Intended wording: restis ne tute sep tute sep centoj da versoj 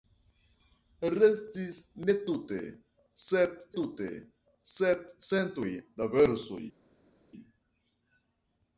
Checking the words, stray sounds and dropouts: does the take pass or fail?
pass